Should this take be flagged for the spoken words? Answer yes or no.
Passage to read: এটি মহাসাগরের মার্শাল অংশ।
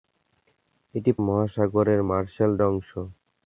no